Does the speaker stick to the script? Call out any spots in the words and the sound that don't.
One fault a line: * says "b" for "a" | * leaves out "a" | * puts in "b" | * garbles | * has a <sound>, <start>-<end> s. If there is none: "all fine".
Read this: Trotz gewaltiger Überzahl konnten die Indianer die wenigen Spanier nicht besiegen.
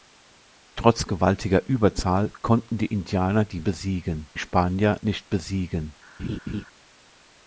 * says "besiegen" for "wenigen"
* has a laugh, 6.2-6.6 s